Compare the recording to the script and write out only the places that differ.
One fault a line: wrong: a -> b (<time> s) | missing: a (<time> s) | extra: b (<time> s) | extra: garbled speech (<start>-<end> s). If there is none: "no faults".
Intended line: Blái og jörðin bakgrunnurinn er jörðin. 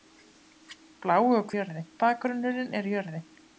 no faults